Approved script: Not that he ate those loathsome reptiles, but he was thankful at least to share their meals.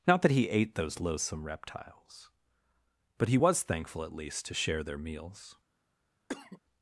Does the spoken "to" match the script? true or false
true